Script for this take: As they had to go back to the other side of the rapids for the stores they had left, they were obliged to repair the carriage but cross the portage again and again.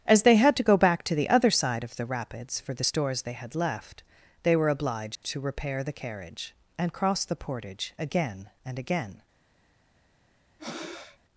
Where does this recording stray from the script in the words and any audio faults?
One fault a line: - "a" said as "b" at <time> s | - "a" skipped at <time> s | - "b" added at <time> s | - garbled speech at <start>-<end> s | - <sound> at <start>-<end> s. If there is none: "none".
- dropout at 5.2-5.2 s
- "but" said as "and" at 6.8 s
- breath at 10.6-11.2 s